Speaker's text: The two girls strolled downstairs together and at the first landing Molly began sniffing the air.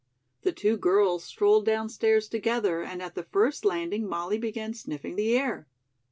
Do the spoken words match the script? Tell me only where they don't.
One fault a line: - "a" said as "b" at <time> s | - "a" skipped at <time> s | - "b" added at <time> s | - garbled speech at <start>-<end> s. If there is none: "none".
none